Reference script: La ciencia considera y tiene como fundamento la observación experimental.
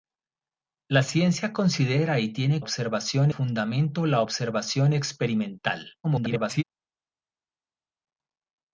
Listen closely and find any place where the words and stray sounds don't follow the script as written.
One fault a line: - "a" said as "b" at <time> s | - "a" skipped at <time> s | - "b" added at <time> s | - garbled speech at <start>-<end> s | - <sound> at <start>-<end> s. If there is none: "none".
- "como" said as "observación" at 2.6 s
- garbled speech at 6.0-6.6 s